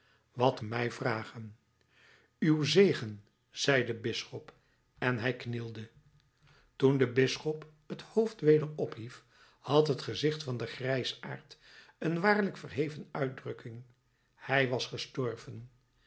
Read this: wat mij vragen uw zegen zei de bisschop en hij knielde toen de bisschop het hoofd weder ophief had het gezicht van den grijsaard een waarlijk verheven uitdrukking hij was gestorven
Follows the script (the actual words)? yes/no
yes